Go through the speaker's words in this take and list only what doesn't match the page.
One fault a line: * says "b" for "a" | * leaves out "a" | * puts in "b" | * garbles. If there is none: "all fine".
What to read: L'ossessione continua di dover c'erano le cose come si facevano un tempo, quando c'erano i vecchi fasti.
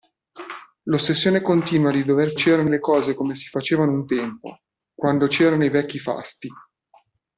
all fine